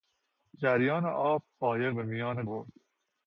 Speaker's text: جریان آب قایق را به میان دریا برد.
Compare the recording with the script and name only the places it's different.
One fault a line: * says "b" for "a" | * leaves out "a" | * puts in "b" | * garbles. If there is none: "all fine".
* leaves out "را"
* leaves out "دریا"